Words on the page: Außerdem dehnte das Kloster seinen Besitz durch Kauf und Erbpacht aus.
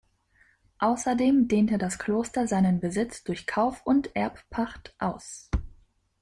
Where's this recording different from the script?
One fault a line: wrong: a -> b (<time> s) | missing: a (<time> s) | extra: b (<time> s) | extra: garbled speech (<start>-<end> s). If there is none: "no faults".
no faults